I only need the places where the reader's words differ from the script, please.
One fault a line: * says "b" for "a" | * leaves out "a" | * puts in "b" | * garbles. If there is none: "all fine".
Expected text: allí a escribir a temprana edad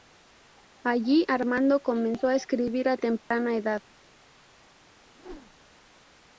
* puts in "armando comenzó"